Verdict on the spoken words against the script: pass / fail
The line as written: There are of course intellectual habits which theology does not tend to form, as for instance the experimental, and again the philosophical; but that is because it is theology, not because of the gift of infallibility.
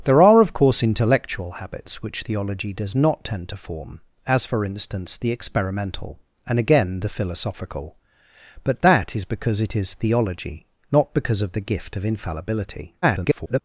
fail